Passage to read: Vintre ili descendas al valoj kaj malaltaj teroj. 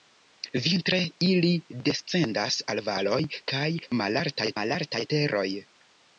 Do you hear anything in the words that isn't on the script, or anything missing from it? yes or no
yes